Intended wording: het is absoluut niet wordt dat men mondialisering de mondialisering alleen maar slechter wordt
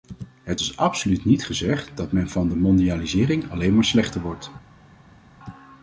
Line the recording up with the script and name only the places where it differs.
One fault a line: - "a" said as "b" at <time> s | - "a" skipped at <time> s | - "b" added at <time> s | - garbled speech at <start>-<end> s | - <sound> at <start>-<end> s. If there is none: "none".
- "wordt" said as "gezegd" at 1.4 s
- "mondialisering" said as "van" at 2.3 s